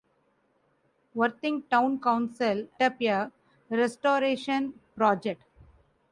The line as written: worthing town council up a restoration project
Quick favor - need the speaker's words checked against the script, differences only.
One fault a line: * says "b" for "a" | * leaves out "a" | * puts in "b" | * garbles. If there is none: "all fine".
all fine